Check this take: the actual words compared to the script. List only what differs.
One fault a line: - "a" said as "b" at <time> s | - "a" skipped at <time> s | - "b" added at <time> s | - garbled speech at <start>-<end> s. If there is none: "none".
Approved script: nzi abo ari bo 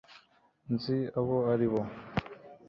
none